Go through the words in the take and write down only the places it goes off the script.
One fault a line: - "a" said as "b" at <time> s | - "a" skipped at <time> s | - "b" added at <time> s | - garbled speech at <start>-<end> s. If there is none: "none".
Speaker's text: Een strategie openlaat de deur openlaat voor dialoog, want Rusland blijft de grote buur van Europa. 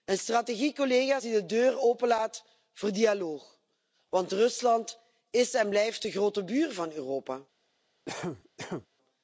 - "openlaat" said as "die" at 1.2 s
- "is en" added at 5.3 s